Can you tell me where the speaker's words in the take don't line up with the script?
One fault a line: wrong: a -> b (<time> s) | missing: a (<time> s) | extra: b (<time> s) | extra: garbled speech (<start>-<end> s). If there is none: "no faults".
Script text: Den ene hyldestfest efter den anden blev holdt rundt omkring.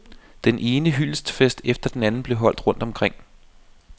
no faults